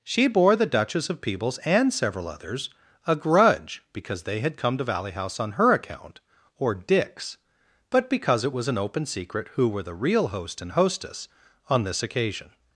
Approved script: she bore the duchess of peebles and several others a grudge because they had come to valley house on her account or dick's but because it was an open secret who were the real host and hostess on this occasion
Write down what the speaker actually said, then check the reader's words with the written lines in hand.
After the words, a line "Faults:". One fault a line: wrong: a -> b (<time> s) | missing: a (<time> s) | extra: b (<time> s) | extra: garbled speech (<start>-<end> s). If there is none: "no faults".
she bore the duchess of peebles and several others a grudge because they had come to valley house on her account or dick's but because it was an open secret who were the real host and hostess on this occasion
Faults:
no faults